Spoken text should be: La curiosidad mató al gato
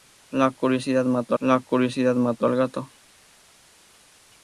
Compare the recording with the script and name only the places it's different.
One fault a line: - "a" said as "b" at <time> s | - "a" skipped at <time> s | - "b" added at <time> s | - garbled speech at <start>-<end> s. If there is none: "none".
- "la curiosidad mató" added at 1.4 s